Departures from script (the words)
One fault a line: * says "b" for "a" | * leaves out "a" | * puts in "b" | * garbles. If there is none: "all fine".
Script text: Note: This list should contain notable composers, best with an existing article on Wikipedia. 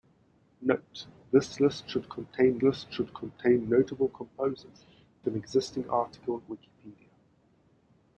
* puts in "list should contain"
* leaves out "best with"
* leaves out "on"